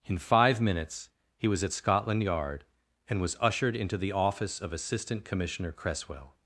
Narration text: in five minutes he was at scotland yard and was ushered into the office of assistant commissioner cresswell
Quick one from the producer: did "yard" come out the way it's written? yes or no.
yes